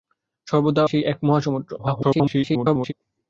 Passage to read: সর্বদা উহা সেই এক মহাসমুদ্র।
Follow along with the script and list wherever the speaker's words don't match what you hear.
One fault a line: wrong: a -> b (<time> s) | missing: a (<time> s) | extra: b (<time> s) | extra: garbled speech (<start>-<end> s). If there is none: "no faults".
missing: উহা (0.8 s)
extra: garbled speech (1.8-2.9 s)